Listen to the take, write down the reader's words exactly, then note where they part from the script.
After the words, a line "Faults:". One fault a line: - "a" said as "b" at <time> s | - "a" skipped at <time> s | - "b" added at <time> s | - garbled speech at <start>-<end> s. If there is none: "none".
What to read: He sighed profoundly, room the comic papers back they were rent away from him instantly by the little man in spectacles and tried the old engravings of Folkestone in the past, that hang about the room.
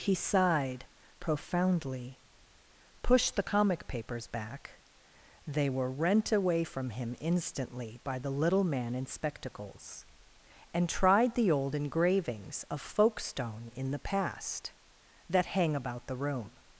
He sighed profoundly, pushed the comic papers back they were rent away from him instantly by the little man in spectacles and tried the old engravings of Folkestone in the past, that hang about the room.
Faults:
- "room" said as "pushed" at 3.0 s